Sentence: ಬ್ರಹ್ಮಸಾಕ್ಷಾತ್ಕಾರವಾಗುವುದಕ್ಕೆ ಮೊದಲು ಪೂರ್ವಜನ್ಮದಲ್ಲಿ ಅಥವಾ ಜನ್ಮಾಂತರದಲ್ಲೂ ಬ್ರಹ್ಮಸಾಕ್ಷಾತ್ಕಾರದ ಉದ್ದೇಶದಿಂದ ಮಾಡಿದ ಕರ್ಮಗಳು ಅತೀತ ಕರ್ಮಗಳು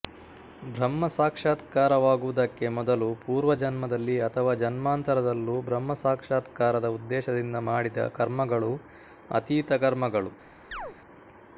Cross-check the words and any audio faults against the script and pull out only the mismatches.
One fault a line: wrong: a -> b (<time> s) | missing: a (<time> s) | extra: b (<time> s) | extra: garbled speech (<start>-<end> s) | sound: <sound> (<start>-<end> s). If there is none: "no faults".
sound: chirp (10.7-11.0 s)